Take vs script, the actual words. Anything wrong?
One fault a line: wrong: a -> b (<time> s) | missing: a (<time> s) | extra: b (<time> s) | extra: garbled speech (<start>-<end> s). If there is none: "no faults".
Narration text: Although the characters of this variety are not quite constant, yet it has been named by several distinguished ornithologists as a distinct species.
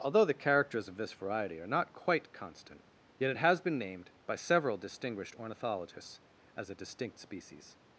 no faults